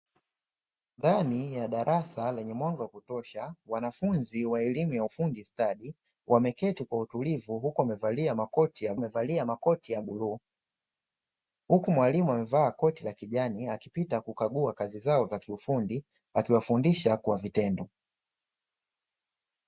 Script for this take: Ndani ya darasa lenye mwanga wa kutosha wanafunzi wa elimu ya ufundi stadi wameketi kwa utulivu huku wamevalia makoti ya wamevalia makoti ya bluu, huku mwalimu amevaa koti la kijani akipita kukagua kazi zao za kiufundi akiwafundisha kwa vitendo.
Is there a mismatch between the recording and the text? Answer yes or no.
no